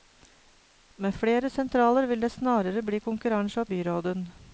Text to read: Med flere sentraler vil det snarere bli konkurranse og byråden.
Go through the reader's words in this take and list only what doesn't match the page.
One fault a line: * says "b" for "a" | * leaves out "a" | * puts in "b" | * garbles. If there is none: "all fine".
all fine